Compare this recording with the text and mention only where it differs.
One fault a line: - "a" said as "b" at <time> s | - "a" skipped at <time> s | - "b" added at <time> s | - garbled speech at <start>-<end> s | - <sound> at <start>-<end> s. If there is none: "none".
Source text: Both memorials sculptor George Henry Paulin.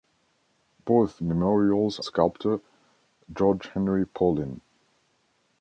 none